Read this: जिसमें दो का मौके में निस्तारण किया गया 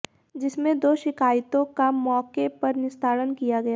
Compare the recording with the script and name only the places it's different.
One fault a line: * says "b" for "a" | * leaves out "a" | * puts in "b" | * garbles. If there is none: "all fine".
* puts in "शिकायतों"
* says "पर" for "में"